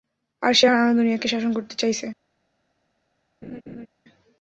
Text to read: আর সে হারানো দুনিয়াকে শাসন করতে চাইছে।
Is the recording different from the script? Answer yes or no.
no